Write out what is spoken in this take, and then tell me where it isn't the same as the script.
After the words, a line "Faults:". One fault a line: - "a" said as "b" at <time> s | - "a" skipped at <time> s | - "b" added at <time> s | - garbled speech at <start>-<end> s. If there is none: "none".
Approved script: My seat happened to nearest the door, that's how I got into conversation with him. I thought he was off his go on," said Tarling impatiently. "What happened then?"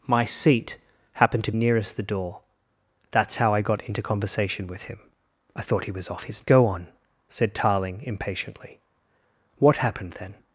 My seat happened to nearest the door, that's how I got into conversation with him. I thought he was off his go on," said Tarling impatiently. "What happened then?"
Faults:
none